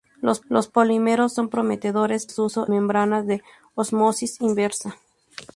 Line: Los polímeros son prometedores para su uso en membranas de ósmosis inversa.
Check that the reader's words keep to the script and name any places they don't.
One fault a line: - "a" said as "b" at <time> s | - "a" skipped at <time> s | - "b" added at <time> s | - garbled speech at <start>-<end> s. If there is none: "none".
- "los" added at 0.5 s
- "para" skipped at 2.3 s
- "en" skipped at 2.7 s